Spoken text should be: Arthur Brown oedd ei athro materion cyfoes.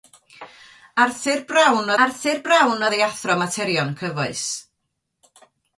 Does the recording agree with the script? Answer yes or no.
no